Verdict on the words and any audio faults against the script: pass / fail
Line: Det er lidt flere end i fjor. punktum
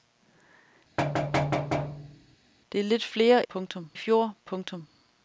fail